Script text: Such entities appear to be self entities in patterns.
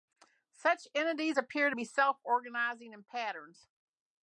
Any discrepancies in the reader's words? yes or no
yes